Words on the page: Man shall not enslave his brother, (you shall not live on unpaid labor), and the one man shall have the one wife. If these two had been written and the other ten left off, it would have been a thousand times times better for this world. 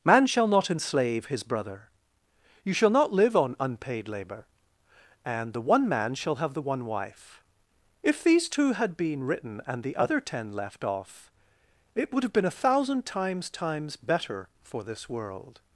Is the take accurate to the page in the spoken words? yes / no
yes